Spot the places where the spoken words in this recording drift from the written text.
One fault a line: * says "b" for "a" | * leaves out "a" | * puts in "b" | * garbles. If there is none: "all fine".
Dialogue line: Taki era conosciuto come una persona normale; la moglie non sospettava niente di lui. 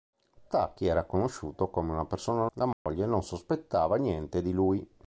* leaves out "normale"